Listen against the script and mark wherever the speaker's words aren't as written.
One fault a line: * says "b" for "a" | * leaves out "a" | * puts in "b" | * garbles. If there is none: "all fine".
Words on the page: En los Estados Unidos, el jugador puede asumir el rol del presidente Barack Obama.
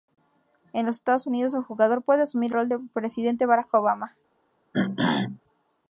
* leaves out "el"